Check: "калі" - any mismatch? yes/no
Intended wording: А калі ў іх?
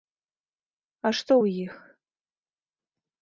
yes